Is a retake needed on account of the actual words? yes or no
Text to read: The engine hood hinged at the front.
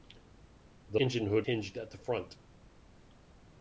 no